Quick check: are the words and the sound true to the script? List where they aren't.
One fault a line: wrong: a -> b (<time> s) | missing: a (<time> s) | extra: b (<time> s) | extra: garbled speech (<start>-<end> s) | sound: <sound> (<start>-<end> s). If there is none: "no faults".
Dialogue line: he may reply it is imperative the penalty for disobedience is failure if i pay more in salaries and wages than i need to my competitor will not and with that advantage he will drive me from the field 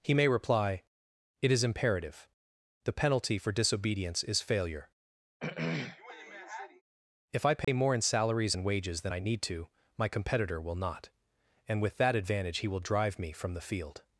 sound: throat clearing (5.4-6.8 s)
sound: dropout (7.6-7.7 s)